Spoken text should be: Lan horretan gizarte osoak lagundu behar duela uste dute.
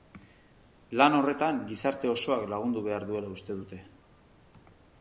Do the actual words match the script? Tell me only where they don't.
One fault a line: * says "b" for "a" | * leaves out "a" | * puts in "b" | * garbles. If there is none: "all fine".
all fine